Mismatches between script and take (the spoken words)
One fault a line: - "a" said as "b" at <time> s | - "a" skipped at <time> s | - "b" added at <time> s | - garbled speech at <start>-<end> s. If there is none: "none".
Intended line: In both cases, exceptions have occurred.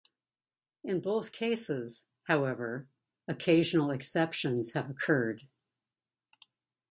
- "however occasional" added at 2.2 s